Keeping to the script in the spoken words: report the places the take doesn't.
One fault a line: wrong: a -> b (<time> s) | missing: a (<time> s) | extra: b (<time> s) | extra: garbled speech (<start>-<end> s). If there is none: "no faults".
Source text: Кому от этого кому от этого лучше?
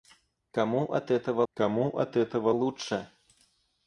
no faults